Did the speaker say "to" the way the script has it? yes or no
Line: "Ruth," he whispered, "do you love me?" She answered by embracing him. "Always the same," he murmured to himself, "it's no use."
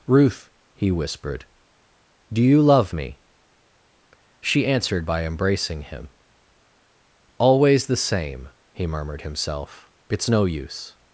no